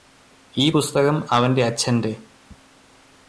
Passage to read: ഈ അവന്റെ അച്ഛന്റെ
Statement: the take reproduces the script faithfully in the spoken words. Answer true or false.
false